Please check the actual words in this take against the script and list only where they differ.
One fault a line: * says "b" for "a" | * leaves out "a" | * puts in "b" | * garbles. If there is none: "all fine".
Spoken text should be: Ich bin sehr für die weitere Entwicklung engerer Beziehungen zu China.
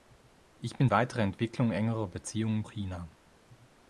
* leaves out "sehr für die"
* leaves out "zu"